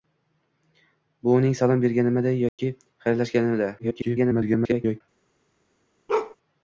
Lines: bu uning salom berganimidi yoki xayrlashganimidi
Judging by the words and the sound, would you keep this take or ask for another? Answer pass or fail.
fail